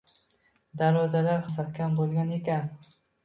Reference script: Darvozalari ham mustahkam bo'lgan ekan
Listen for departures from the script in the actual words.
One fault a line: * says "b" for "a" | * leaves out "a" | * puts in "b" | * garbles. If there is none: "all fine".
* leaves out "ham"